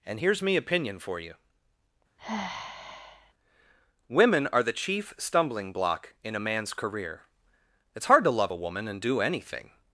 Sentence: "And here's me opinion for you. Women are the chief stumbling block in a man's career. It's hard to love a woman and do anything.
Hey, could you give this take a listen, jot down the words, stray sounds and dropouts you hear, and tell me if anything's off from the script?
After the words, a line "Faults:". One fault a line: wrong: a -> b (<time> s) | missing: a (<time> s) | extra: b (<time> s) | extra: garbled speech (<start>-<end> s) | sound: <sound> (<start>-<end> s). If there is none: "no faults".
"And here's me opinion for you. Women are the chief stumbling block in a man's career. It's hard to love a woman and do anything.
Faults:
sound: sigh (2.2-3.3 s)